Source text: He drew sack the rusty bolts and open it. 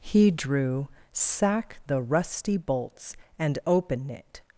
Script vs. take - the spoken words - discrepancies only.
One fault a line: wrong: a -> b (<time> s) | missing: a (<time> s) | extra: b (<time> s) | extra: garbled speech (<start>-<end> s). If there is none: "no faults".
no faults